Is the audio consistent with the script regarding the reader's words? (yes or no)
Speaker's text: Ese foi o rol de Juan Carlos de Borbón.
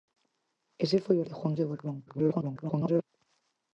no